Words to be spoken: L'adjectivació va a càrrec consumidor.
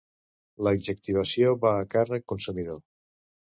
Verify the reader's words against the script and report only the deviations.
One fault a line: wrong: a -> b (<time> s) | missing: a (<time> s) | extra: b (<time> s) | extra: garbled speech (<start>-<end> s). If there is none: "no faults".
no faults